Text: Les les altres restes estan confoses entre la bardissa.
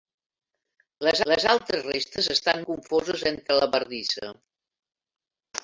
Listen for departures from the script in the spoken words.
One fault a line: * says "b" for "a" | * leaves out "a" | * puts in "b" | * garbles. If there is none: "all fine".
all fine